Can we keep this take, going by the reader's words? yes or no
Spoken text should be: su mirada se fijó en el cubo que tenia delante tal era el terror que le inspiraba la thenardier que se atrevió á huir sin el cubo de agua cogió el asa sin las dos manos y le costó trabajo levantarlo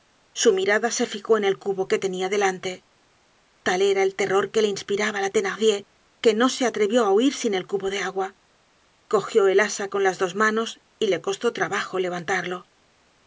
no